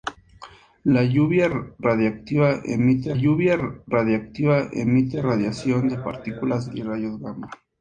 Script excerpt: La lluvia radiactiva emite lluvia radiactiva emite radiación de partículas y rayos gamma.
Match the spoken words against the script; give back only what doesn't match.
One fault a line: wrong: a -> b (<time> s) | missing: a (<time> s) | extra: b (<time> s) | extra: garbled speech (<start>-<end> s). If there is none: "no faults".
no faults